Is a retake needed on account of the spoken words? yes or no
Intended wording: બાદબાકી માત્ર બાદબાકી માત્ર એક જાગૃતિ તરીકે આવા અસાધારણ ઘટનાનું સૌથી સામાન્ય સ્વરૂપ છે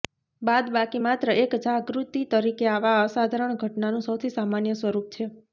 yes